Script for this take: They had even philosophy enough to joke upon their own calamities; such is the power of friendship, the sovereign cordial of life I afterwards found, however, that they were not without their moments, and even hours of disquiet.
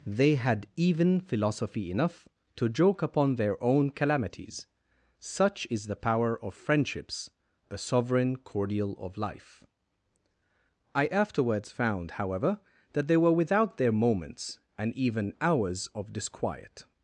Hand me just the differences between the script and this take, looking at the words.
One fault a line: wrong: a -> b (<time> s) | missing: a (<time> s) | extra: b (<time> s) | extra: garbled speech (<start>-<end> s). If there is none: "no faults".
wrong: friendship -> friendships (6.5 s)
missing: not (13.3 s)